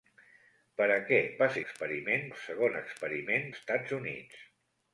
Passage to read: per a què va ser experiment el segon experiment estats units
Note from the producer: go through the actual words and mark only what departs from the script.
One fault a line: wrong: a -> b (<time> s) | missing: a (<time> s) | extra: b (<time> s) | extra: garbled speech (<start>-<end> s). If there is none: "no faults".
no faults